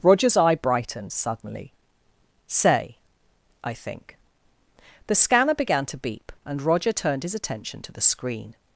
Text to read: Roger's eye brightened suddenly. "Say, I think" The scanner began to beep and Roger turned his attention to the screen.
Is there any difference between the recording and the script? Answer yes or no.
no